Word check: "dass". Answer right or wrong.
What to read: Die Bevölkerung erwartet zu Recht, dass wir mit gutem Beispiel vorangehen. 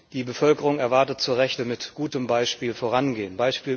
wrong